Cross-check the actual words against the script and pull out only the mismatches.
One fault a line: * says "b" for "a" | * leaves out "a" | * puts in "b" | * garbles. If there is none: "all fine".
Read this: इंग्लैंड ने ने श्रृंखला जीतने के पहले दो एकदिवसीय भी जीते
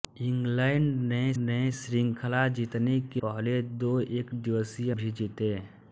all fine